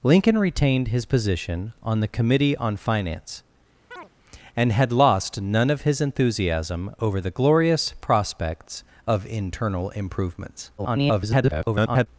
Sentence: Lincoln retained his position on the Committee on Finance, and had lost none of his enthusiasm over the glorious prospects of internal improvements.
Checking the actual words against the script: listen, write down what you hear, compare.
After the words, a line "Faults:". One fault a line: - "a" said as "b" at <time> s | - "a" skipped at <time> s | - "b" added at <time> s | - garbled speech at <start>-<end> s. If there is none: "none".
Lincoln retained his position on the Committee on Finance, and had lost none of his enthusiasm over the glorious prospects of internal improvements. [garbled]
Faults:
- garbled speech at 10.8-12.1 s